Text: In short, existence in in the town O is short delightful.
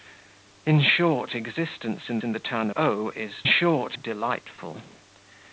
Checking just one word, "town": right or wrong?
right